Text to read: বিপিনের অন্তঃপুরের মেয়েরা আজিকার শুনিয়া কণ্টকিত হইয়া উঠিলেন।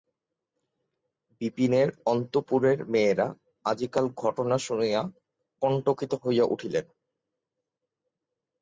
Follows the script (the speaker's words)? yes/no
no